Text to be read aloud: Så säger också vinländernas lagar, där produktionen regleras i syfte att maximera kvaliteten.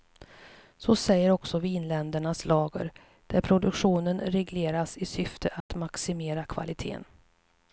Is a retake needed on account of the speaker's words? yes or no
no